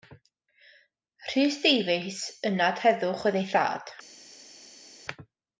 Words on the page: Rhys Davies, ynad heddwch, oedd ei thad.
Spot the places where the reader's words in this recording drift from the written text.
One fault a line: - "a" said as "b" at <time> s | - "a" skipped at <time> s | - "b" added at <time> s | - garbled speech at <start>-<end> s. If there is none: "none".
none